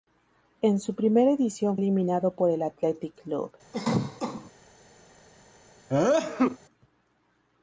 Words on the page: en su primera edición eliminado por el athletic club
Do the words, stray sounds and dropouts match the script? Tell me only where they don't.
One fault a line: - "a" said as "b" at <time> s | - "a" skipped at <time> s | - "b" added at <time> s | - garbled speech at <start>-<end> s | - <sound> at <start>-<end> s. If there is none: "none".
- cough at 3.7-4.5 s
- sneeze at 5.9-6.6 s